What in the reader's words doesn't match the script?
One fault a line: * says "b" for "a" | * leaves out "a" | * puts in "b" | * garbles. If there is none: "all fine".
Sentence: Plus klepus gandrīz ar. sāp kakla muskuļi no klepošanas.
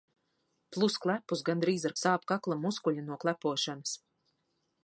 all fine